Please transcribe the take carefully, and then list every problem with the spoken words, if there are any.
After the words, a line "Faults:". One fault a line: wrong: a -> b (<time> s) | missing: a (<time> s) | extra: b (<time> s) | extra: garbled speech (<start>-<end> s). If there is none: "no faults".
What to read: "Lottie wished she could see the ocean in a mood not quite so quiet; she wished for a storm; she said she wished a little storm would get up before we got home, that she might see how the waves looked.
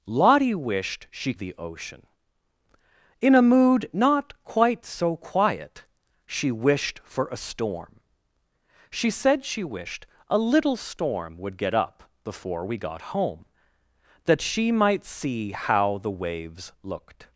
"Lottie wished she the ocean in a mood not quite so quiet; she wished for a storm; she said she wished a little storm would get up before we got home, that she might see how the waves looked.
Faults:
missing: could see (1.3 s)